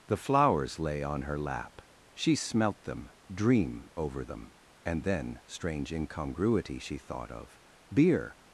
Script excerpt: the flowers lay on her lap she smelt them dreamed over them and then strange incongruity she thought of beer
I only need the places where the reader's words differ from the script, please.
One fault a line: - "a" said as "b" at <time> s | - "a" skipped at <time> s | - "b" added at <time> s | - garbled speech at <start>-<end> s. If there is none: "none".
- "dreamed" said as "dream" at 3.3 s